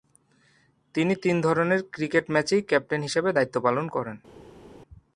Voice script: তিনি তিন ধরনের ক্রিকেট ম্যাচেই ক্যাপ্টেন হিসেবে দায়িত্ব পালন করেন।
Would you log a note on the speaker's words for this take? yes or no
no